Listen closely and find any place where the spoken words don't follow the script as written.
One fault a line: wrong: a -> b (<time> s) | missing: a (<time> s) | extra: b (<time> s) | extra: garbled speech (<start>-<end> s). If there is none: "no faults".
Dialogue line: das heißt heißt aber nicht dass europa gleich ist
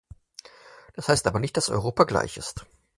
missing: heißt (1.3 s)